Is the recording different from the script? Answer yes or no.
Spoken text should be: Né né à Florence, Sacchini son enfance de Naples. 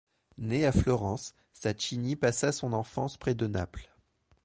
yes